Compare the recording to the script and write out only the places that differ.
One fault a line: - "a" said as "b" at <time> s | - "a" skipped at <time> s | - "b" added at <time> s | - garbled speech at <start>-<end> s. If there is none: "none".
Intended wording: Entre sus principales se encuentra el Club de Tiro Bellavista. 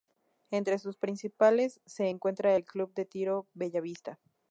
none